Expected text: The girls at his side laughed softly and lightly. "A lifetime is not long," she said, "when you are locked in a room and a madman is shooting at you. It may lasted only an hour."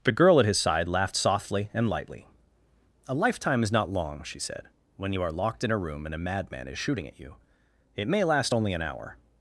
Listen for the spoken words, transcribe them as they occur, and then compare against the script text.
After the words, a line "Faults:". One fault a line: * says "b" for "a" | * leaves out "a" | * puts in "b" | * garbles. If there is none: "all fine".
The girl at his side laughed softly and lightly. "A lifetime is not long," she said, "when you are locked in a room and a madman is shooting at you. It may last only an hour."
Faults:
* says "girl" for "girls"
* says "last" for "lasted"